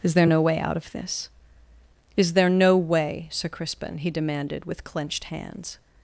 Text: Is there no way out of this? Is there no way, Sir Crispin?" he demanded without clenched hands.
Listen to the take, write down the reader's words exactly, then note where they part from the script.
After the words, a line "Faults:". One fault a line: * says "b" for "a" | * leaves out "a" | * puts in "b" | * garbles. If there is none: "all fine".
Is there no way out of this? Is there no way, Sir Crispin?" he demanded with clenched hands.
Faults:
* says "with" for "without"